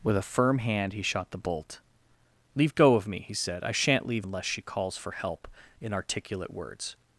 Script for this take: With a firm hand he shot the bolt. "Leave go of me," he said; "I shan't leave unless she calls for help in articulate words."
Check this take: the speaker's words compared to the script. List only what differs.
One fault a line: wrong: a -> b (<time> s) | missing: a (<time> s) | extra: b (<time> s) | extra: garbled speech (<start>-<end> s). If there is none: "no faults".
no faults